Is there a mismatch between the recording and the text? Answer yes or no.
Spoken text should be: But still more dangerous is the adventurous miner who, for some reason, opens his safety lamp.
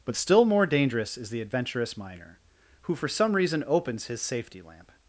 no